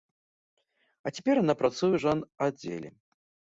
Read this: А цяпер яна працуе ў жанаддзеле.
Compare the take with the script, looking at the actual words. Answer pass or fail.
pass